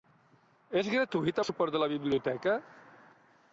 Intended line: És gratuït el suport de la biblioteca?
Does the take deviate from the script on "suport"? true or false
false